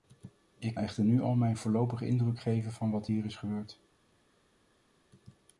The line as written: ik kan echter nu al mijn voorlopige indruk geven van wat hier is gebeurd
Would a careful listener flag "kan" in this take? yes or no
yes